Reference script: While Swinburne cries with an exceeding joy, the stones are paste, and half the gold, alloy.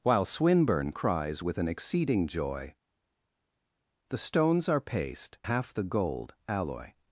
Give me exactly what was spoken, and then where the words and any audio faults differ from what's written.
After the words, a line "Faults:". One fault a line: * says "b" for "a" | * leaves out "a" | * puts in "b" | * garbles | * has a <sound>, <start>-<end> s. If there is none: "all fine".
While Swinburne cries with an exceeding joy, the stones are paste, half the gold, alloy.
Faults:
* leaves out "and"